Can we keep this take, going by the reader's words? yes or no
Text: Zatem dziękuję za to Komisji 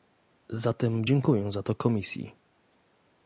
yes